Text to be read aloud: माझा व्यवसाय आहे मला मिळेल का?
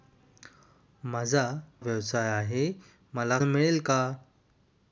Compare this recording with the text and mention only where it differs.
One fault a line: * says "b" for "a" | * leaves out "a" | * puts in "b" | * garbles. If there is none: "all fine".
all fine